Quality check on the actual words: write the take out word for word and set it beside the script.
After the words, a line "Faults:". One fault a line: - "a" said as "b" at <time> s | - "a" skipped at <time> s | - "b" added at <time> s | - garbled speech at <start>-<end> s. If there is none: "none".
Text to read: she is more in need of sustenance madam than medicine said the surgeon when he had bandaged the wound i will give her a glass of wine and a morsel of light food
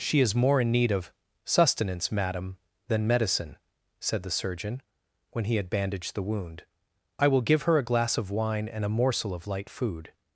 she is more in need of sustenance madam than medicine said the surgeon when he had bandaged the wound i will give her a glass of wine and a morsel of light food
Faults:
none